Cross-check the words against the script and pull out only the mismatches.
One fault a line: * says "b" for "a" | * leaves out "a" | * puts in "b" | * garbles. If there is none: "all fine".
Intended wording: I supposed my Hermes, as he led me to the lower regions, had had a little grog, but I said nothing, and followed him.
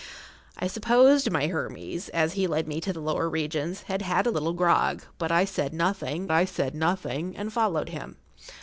* puts in "I said nothing"